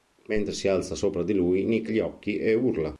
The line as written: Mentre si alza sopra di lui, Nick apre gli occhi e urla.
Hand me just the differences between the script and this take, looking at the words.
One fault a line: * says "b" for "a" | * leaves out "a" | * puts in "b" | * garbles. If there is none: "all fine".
* leaves out "apre"